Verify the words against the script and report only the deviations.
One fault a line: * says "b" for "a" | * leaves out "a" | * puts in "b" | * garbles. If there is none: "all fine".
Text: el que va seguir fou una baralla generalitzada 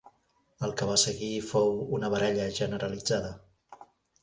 all fine